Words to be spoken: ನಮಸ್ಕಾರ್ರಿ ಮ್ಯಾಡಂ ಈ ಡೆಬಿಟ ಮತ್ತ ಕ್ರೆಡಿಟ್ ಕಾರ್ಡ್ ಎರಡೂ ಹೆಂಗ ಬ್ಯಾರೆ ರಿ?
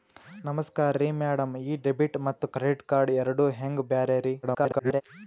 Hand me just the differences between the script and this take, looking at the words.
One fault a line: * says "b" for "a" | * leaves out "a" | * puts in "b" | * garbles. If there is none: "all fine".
* garbles